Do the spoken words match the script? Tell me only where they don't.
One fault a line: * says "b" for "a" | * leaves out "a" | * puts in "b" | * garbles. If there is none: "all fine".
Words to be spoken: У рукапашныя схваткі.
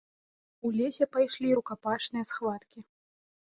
* puts in "лесе пайшлі"